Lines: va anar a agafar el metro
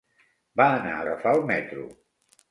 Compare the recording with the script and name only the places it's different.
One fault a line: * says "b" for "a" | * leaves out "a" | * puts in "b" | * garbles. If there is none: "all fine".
all fine